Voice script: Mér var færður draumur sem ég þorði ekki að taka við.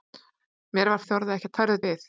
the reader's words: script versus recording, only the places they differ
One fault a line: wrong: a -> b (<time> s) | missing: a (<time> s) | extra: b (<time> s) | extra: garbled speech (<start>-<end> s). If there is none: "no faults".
missing: færður draumur sem (1.0 s)
wrong: taka -> færður (1.6 s)